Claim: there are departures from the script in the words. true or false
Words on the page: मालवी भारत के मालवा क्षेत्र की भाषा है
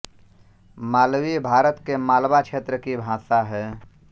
false